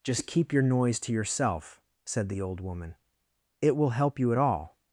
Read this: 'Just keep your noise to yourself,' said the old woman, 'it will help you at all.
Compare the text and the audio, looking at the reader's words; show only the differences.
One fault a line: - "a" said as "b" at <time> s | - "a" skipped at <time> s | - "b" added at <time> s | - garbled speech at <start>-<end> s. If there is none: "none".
none